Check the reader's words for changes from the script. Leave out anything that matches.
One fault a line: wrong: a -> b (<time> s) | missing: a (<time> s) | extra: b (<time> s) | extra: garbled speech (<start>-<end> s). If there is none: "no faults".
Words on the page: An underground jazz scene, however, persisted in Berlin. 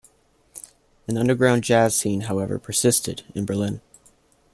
no faults